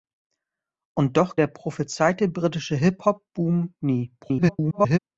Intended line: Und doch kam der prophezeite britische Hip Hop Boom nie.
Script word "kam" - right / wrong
wrong